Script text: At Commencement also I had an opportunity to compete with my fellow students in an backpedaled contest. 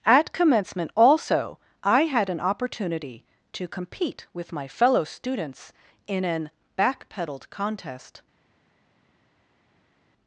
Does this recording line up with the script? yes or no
yes